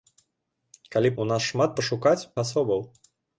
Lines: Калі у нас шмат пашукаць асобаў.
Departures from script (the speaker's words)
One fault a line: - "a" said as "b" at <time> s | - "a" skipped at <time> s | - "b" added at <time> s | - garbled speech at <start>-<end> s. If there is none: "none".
none